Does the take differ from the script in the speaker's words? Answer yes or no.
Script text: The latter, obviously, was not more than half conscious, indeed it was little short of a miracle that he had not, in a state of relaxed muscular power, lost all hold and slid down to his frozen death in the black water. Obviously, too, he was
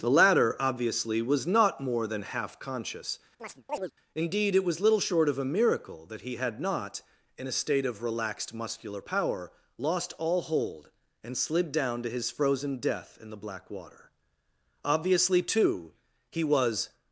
no